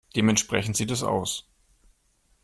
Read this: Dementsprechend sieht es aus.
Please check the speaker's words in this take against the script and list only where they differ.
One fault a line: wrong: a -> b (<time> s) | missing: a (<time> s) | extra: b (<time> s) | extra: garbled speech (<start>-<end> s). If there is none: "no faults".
no faults